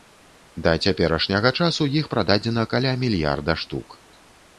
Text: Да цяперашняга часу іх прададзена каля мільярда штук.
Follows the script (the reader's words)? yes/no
yes